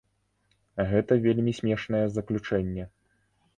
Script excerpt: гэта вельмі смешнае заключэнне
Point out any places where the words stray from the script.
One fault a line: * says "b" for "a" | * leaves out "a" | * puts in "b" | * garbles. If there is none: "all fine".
all fine